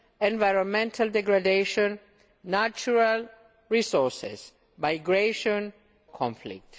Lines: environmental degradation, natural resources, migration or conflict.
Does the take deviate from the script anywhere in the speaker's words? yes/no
yes